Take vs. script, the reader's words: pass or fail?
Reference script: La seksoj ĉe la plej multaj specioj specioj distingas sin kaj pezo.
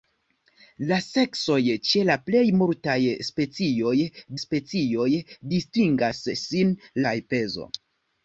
pass